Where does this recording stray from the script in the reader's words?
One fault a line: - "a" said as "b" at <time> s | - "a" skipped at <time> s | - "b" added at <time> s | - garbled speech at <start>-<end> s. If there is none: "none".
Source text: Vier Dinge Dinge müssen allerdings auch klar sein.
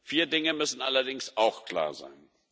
- "Dinge" skipped at 0.5 s